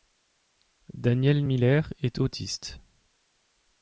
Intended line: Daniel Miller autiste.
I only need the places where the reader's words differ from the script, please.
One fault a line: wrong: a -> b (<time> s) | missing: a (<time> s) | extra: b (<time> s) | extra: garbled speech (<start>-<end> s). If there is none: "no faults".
extra: est (2.0 s)